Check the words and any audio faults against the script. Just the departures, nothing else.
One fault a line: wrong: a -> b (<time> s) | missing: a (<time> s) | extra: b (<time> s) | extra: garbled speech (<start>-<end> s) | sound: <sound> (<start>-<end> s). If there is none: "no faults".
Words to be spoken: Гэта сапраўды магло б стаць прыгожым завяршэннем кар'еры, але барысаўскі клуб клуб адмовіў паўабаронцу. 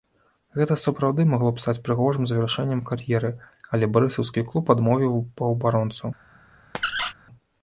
missing: клуб (4.7 s)
sound: squeak (6.7-7.1 s)